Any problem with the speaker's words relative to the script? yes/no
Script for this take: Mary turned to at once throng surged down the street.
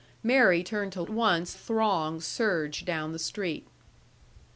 no